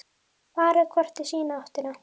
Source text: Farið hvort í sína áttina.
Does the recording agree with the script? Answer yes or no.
yes